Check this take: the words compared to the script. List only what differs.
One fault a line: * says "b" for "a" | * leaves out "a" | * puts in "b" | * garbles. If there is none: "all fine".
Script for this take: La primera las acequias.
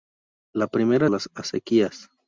all fine